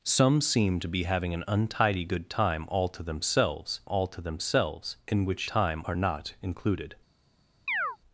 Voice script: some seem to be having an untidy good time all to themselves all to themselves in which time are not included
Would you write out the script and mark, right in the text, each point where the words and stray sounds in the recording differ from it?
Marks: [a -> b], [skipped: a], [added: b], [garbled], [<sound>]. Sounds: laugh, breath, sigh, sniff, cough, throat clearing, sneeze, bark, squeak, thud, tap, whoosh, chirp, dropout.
some seem to be having an untidy good time all to themselves all to themselves in which time are not included [chirp]